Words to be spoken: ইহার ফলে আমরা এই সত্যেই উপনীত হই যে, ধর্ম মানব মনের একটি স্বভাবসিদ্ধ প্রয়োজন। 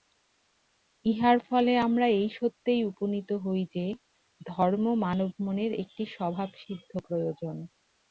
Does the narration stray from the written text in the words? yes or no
no